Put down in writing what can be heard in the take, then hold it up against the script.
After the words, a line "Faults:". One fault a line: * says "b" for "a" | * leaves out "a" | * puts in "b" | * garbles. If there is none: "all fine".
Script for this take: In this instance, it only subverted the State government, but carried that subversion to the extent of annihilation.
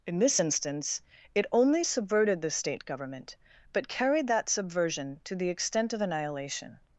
In this instance, it only subverted the State government, but carried that subversion to the extent of annihilation.
Faults:
all fine